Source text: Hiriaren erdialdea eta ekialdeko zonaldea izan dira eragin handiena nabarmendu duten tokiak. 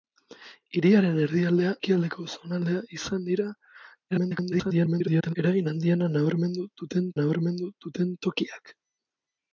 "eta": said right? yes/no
no